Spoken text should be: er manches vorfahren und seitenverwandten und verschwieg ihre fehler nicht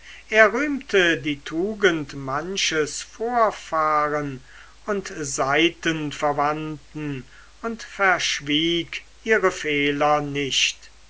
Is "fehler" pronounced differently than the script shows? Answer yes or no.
no